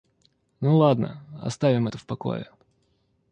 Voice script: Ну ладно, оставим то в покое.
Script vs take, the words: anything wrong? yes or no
yes